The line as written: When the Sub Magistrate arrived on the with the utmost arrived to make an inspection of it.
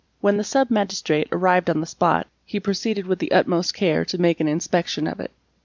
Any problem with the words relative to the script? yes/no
yes